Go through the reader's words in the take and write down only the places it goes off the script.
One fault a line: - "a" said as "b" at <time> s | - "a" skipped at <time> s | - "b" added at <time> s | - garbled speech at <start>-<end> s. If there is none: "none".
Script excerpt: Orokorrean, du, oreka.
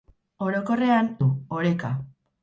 none